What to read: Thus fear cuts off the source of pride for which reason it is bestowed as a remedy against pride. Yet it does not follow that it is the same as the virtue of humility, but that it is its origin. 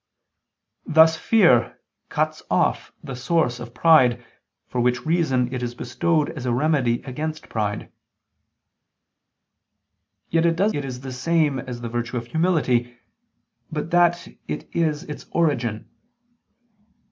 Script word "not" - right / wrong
wrong